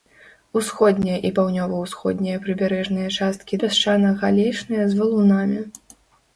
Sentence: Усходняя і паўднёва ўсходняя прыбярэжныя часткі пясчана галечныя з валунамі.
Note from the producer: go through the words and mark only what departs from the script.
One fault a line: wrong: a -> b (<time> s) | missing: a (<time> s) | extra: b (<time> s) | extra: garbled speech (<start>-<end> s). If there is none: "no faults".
no faults